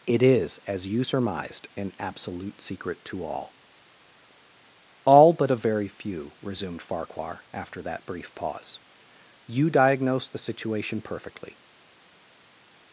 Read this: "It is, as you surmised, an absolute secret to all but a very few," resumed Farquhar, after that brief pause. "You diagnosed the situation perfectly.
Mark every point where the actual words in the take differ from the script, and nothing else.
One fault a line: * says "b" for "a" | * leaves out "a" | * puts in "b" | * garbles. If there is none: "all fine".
* puts in "all"